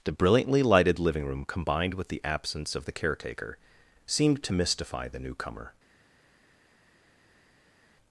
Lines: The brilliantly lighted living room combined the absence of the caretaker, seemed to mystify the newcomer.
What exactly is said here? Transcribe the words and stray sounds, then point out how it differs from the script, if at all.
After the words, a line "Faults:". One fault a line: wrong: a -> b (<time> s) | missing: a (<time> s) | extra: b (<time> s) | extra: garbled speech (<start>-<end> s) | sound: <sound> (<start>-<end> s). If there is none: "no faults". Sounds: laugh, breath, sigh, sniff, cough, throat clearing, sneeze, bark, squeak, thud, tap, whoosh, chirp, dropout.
The brilliantly lighted living room combined with the absence of the caretaker, seemed to mystify the newcomer.
Faults:
extra: with (1.9 s)